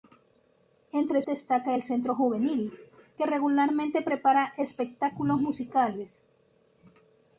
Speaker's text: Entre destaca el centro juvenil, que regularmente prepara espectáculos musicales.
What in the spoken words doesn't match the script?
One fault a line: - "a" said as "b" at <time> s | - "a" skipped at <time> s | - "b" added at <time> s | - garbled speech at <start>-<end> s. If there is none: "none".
none